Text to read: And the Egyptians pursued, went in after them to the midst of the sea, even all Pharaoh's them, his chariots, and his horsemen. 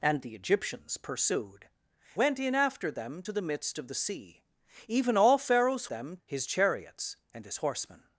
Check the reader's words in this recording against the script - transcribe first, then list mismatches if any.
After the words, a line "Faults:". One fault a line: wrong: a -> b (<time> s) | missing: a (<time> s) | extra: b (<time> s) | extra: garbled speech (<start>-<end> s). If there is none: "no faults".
And the Egyptians pursued, went in after them to the midst of the sea, even all Pharaoh's them, his chariots, and his horsemen.
Faults:
no faults